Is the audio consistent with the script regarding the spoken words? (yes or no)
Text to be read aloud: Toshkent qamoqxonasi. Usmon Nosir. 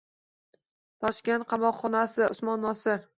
yes